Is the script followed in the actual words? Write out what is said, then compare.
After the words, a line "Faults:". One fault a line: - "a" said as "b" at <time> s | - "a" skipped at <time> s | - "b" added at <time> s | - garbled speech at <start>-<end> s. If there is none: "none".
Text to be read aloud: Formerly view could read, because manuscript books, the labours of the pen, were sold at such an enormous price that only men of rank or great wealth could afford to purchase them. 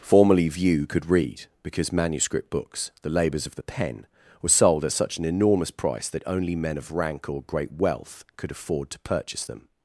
Formerly view could read, because manuscript books, the labours of the pen, were sold at such an enormous price that only men of rank or great wealth could afford to purchase them.
Faults:
none